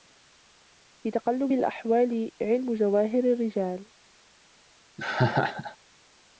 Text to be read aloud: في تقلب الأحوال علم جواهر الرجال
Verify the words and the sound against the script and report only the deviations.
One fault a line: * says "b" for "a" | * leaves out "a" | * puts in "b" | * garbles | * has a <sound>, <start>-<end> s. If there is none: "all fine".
* has a laugh, 5.0-5.8 s